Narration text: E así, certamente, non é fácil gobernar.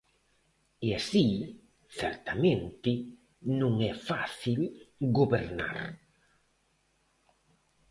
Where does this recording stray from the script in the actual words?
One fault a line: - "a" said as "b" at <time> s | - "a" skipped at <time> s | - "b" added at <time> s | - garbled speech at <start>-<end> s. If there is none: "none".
none